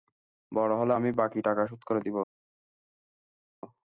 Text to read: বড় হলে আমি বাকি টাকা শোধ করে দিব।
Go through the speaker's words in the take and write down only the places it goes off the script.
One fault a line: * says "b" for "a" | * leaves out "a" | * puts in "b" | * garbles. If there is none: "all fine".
all fine